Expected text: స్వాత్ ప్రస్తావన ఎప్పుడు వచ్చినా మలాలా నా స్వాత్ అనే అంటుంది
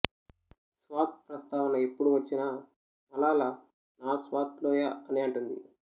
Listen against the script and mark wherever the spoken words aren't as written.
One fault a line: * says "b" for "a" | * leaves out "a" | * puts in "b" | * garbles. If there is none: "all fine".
* puts in "లోయ"